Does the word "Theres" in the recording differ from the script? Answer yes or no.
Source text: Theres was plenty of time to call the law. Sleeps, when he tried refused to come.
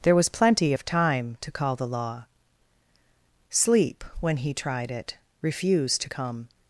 yes